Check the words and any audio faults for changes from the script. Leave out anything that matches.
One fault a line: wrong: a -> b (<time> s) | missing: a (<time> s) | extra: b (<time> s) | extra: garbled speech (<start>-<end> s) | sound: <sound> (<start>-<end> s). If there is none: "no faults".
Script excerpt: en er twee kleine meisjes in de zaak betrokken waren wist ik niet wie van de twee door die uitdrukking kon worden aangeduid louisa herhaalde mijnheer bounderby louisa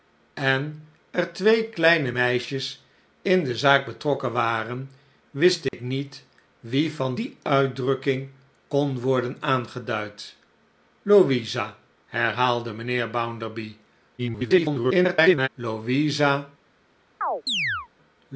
sound: dropout (5.7-5.7 s)
missing: de twee door (7.2 s)
extra: garbled speech (14.2-15.5 s)
sound: chirp (17.2-17.9 s)